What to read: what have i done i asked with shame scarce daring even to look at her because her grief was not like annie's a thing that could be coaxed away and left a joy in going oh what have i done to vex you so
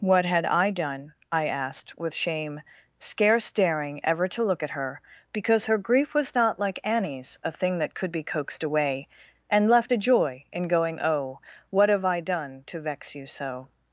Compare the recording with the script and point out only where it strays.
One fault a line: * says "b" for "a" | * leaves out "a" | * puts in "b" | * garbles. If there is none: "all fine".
* says "had" for "have"
* says "ever" for "even"